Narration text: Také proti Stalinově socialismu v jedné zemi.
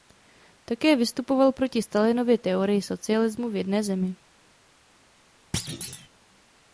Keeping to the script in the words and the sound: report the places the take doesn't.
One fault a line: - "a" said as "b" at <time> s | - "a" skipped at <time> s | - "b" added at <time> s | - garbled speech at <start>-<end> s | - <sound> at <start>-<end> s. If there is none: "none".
- "vystupoval" added at 0.9 s
- "teorii" added at 2.4 s
- thud at 5.5-6.1 s